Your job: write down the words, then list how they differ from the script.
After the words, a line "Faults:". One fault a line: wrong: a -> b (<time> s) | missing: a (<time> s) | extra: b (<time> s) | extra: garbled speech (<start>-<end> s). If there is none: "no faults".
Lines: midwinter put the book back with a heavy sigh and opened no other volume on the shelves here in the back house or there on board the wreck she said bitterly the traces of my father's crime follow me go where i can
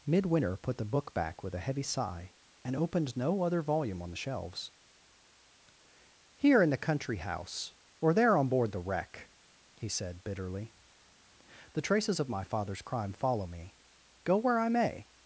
midwinter put the book back with a heavy sigh and opened no other volume on the shelves here in the country house or there on board the wreck he said bitterly the traces of my father's crime follow me go where i may
Faults:
wrong: back -> country (6.8 s)
wrong: she -> he (9.8 s)
wrong: can -> may (14.7 s)